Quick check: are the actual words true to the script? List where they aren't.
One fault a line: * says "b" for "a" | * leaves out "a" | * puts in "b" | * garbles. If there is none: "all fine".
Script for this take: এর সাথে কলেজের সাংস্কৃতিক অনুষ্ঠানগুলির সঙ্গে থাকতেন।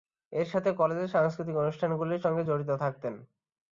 * puts in "জড়িত"